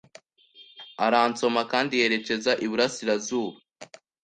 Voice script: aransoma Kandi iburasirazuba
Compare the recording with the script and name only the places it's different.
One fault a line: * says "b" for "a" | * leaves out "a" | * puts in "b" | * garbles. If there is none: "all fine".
* puts in "yerekeza"